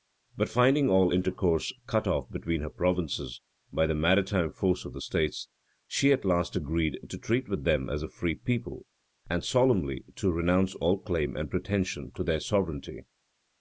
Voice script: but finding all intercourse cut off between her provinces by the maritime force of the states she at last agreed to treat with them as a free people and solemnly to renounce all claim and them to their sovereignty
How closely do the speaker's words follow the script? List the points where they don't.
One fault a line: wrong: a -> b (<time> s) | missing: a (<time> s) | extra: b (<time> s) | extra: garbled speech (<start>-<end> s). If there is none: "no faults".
wrong: them -> pretension (11.5 s)